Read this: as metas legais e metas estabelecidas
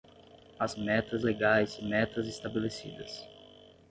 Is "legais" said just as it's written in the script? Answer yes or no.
yes